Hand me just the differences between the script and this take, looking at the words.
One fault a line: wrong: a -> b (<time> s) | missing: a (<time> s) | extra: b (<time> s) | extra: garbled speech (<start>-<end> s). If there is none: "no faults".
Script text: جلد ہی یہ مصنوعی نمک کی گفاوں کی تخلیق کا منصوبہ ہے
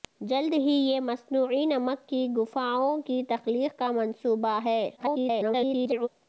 extra: garbled speech (5.0-6.1 s)